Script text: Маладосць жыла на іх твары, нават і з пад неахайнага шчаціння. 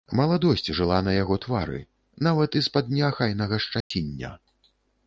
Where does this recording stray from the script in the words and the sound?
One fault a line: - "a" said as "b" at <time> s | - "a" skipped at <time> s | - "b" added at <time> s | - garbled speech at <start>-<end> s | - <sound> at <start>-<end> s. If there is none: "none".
- "іх" said as "яго" at 1.2 s
- dropout at 3.8-3.9 s